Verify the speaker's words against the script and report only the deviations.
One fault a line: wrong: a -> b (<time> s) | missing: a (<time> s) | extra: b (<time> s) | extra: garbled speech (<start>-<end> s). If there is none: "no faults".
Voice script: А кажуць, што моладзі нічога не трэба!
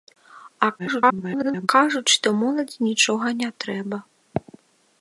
extra: garbled speech (0.8-1.7 s)